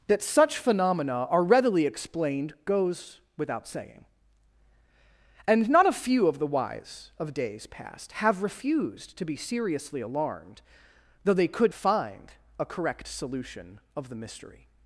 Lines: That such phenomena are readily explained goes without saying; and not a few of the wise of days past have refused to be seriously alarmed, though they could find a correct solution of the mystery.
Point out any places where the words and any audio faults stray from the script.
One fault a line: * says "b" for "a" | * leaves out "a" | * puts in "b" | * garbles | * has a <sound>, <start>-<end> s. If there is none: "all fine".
all fine